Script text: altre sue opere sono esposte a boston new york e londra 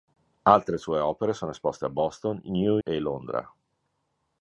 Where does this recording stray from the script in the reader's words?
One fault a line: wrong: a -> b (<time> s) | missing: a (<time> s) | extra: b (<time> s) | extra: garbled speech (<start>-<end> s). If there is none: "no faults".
missing: york (2.8 s)